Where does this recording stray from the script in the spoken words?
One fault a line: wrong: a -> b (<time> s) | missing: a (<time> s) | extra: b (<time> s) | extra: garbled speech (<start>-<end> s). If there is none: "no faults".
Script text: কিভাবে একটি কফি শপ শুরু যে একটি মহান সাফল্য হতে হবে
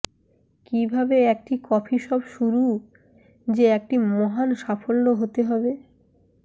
no faults